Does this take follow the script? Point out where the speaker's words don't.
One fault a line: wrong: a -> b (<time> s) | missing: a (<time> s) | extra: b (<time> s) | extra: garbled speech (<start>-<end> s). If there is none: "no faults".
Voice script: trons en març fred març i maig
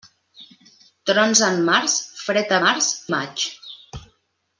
no faults